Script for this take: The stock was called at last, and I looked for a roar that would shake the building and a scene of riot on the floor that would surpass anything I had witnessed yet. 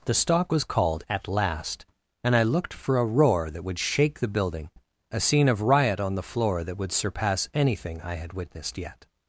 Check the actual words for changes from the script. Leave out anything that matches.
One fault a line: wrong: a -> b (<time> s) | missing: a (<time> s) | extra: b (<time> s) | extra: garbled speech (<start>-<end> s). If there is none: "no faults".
missing: and (4.7 s)